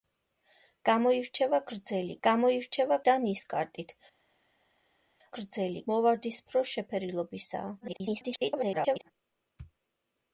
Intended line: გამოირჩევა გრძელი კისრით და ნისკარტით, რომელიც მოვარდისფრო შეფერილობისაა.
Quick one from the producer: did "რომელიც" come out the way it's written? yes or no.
no